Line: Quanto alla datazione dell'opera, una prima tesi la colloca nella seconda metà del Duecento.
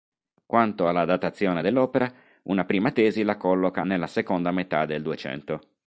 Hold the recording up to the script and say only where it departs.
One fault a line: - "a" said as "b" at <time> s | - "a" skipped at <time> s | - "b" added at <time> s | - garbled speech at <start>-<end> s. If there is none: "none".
none